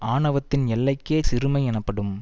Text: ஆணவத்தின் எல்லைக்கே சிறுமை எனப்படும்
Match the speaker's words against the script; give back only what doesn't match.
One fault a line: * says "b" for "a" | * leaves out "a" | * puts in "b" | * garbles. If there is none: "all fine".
all fine